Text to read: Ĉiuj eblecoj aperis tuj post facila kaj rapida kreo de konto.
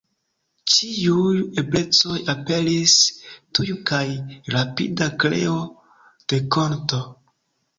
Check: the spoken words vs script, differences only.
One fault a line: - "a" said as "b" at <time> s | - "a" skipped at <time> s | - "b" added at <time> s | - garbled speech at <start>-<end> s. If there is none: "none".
- "post facila" skipped at 3.7 s